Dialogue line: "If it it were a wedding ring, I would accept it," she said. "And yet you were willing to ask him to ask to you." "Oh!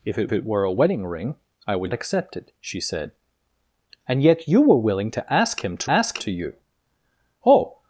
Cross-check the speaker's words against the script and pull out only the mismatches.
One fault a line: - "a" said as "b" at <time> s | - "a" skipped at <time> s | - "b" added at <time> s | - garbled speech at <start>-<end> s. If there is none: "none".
none